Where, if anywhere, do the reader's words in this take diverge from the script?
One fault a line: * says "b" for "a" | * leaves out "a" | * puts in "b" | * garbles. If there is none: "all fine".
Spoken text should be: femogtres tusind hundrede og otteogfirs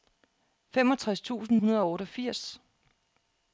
all fine